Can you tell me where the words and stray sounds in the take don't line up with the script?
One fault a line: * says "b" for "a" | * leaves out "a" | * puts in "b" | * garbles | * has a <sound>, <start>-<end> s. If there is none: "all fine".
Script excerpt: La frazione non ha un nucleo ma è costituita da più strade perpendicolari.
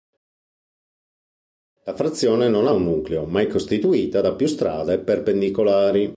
all fine